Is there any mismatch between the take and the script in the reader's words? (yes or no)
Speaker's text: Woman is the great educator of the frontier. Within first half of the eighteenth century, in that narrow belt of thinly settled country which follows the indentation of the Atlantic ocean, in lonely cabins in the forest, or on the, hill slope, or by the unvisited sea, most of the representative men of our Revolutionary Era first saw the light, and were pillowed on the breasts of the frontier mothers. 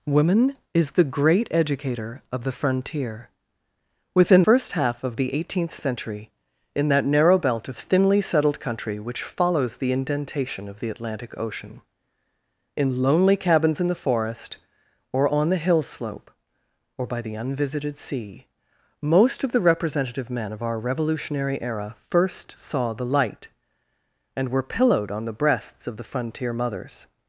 no